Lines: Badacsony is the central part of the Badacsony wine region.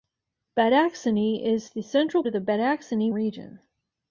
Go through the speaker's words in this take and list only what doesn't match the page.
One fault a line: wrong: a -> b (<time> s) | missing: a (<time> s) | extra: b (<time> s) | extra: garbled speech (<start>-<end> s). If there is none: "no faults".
missing: part (2.2 s)
missing: wine (3.1 s)